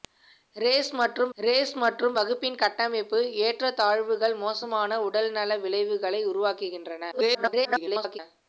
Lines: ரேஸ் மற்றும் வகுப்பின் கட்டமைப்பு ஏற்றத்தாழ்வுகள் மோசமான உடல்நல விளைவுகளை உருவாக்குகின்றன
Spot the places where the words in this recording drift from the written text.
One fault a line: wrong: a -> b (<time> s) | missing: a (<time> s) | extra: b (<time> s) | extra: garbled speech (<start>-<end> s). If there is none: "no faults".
extra: ரேஸ் மற்றும் (1.4 s)
extra: garbled speech (7.1-8.2 s)